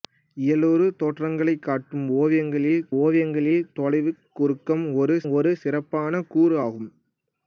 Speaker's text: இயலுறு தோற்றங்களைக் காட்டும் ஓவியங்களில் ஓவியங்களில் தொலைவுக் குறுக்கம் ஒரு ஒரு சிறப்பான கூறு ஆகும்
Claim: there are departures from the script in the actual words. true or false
false